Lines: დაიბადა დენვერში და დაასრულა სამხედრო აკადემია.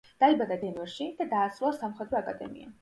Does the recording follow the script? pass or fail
pass